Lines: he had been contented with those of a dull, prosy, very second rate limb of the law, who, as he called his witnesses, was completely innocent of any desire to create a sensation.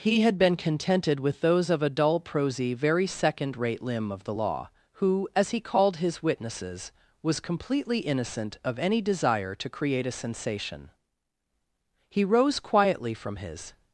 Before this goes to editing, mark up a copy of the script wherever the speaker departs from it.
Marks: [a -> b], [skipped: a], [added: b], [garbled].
he had been contented with those of a dull, prosy, very second rate limb of the law, who, as he called his witnesses, was completely innocent of any desire to create a sensation. [added: He rose quietly from his]